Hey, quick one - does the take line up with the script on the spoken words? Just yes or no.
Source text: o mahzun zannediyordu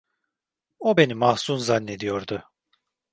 no